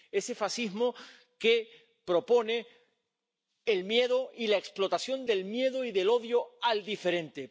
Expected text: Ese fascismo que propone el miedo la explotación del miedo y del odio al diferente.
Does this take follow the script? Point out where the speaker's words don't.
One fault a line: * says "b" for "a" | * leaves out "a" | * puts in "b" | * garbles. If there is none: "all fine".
* puts in "y"